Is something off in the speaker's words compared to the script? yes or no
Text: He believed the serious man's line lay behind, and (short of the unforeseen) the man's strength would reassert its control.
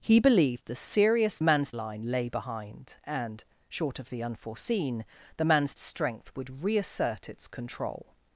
no